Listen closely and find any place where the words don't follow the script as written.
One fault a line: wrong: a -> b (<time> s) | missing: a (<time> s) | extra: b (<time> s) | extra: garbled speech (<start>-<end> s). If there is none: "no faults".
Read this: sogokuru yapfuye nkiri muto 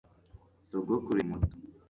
missing: yapfuye nkiri (1.2 s)